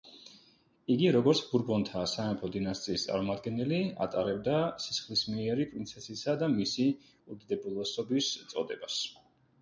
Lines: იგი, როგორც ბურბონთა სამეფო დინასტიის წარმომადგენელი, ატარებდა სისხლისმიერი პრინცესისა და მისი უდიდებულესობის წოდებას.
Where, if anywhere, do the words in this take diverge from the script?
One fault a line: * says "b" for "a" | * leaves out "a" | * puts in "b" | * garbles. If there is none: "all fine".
all fine